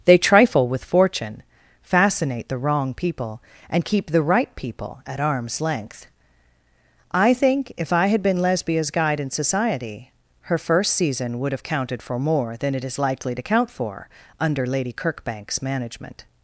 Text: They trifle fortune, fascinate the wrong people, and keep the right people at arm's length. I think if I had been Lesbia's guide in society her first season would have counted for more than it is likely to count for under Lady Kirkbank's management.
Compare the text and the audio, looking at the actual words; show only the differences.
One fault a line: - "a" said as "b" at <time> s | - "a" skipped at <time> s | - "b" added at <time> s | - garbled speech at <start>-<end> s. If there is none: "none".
- "with" added at 0.7 s